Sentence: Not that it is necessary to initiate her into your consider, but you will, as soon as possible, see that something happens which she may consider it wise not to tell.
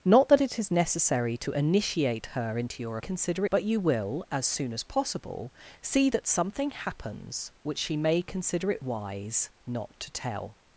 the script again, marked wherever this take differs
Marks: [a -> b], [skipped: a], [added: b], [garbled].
Not that it is necessary to initiate her into your consider, but you will, as soon as possible, see that something happens which she may consider it wise not to tell.